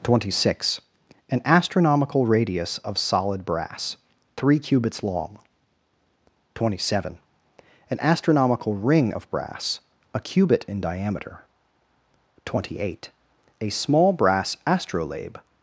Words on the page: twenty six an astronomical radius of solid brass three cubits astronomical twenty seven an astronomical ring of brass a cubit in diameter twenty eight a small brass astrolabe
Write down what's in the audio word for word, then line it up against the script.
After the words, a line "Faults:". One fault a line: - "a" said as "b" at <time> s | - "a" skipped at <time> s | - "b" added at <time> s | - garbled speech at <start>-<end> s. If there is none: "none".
twenty six an astronomical radius of solid brass three cubits long twenty seven an astronomical ring of brass a cubit in diameter twenty eight a small brass astrolabe
Faults:
- "astronomical" said as "long" at 5.0 s